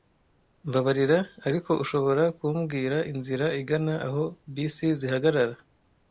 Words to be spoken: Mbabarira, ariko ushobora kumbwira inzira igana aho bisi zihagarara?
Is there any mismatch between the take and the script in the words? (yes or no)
no